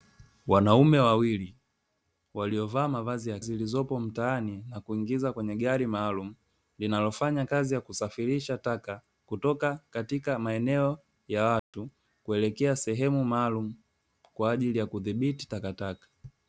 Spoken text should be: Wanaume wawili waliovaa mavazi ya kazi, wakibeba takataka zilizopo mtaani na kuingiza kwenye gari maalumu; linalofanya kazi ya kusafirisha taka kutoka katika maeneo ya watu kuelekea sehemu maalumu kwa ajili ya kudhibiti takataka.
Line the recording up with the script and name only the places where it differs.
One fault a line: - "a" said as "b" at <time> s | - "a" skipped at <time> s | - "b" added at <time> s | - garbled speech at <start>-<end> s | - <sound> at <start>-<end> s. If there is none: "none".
- "kazi wakibeba takataka" skipped at 3.4 s
- dropout at 11.6-11.7 s